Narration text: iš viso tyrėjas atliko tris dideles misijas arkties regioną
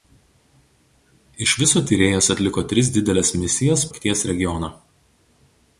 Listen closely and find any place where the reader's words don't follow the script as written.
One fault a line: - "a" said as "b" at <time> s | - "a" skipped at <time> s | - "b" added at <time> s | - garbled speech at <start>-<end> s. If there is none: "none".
none